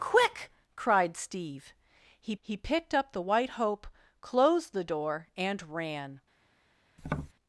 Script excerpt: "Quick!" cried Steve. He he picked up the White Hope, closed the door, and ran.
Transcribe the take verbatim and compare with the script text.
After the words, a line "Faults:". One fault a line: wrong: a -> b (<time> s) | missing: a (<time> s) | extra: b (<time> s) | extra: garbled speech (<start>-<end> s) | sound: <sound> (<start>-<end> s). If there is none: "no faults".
"Quick!" cried Steve. He he picked up the White Hope, closed the door, and ran.
Faults:
sound: tap (7.0-7.3 s)